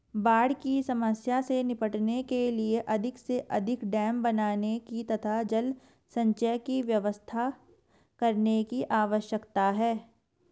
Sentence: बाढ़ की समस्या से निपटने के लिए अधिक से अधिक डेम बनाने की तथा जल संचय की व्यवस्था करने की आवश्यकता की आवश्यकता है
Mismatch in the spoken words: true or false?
true